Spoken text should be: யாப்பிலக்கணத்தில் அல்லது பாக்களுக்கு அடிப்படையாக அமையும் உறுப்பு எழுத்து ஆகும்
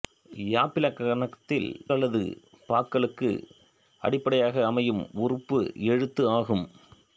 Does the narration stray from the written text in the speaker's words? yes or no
no